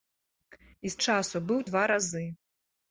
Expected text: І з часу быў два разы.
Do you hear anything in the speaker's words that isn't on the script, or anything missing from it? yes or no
no